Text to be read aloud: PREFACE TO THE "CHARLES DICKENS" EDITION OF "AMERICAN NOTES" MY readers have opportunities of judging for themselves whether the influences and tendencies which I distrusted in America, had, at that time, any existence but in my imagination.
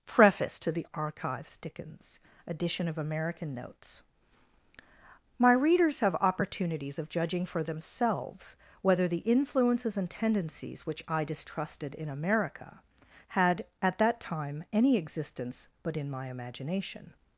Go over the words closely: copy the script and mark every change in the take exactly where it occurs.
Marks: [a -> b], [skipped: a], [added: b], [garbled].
PREFACE TO THE ["CHARLES -> Archives] DICKENS" EDITION OF "AMERICAN NOTES" MY readers have opportunities of judging for themselves whether the influences and tendencies which I distrusted in America, had, at that time, any existence but in my imagination.